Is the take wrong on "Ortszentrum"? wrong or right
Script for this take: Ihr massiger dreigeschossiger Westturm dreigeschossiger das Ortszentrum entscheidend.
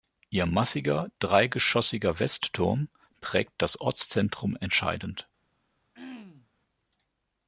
right